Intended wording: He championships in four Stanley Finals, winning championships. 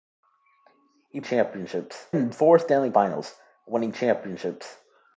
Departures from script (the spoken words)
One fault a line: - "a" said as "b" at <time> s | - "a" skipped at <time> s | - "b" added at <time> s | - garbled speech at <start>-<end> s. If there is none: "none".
none